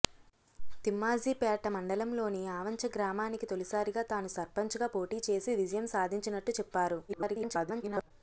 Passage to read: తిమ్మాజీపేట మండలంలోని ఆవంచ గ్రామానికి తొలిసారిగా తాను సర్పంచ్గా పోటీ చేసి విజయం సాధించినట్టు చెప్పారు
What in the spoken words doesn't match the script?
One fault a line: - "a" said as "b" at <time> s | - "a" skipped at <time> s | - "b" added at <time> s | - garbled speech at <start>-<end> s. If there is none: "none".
- garbled speech at 7.1-8.1 s